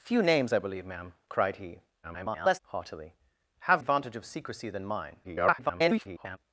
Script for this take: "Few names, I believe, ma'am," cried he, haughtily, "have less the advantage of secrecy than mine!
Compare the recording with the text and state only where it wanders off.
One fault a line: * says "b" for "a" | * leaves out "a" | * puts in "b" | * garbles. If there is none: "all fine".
* garbles
* leaves out "less the"
* garbles